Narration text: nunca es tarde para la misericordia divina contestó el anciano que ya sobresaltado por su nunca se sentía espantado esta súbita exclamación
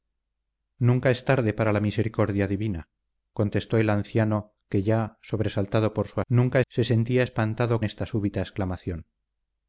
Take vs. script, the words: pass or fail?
pass